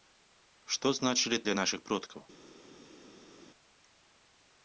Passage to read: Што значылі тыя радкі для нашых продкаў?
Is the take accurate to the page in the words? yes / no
no